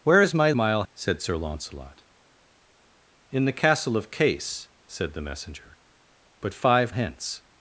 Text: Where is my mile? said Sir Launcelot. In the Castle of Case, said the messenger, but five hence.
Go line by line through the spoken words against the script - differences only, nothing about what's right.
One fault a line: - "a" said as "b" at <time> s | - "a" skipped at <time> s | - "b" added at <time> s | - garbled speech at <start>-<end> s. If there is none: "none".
none